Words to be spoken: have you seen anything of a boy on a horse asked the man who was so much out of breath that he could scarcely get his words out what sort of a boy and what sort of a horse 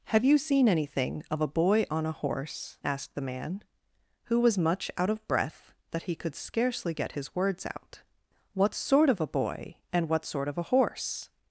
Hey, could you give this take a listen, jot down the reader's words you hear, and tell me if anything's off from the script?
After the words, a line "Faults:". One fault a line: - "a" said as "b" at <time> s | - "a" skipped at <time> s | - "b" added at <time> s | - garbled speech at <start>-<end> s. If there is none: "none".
have you seen anything of a boy on a horse asked the man who was much out of breath that he could scarcely get his words out what sort of a boy and what sort of a horse
Faults:
- "so" skipped at 4.6 s